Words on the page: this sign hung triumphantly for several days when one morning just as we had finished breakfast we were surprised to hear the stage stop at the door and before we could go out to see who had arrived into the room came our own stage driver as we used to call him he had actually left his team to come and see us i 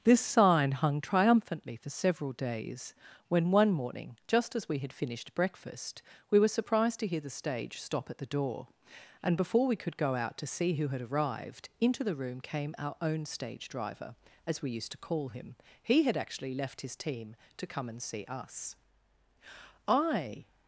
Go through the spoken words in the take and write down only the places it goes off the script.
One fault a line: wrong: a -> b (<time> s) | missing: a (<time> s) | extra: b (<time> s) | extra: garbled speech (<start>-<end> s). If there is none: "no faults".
no faults